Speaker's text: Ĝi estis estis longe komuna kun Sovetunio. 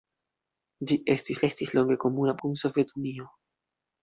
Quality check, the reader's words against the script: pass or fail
pass